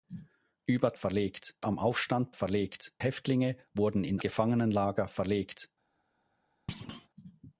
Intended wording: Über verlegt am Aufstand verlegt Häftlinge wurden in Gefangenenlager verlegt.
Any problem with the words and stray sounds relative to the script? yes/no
yes